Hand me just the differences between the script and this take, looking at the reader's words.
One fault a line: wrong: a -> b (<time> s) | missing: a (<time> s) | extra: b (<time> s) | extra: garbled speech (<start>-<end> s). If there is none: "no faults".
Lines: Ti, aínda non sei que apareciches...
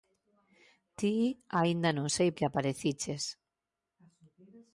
no faults